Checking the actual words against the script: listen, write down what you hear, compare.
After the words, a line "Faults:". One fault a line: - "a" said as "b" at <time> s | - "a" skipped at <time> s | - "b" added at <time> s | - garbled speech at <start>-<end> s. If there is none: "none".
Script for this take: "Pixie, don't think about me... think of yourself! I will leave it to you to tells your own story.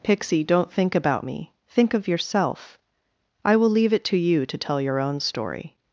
"Pixie, don't think about me... think of yourself! I will leave it to you to tell your own story.
Faults:
- "tells" said as "tell" at 4.6 s